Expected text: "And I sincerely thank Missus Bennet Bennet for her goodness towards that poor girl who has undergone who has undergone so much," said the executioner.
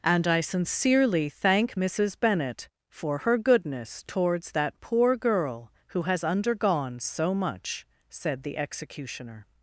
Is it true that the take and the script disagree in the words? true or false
true